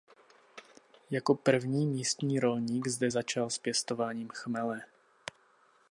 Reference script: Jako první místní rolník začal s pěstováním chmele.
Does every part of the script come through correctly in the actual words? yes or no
no